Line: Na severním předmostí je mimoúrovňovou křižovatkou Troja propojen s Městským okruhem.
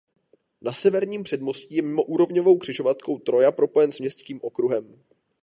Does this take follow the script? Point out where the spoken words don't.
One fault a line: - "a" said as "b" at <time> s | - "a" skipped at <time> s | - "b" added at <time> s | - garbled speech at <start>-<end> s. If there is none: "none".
none